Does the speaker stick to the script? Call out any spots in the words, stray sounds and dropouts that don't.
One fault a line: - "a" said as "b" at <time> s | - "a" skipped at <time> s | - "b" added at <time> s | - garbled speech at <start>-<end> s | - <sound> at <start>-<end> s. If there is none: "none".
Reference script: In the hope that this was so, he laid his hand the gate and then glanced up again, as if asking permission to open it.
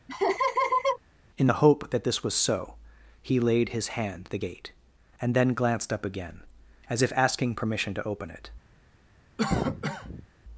- laugh at 0.1-1.0 s
- cough at 9.4-10.3 s